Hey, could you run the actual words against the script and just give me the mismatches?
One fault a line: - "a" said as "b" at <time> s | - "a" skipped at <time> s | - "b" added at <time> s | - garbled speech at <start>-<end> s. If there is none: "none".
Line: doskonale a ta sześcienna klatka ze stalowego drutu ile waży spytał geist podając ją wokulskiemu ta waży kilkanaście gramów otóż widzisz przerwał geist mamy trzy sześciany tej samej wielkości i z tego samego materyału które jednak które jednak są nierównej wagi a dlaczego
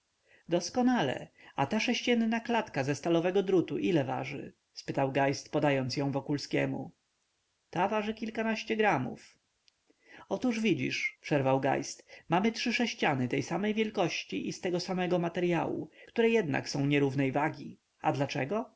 - "które jednak" skipped at 16.7 s